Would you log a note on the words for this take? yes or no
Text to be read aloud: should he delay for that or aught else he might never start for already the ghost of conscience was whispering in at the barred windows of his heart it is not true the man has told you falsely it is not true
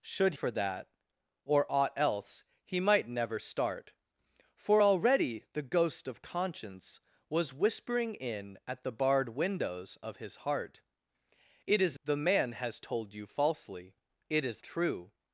yes